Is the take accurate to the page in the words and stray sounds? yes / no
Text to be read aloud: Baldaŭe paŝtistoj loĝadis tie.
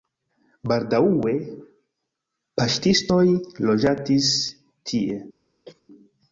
no